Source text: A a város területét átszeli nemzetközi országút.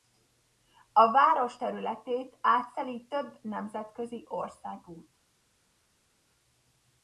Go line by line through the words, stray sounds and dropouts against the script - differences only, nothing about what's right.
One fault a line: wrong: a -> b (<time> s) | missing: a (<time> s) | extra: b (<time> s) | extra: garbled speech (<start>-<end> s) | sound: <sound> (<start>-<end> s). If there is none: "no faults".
missing: a (1.1 s)
extra: több (3.1 s)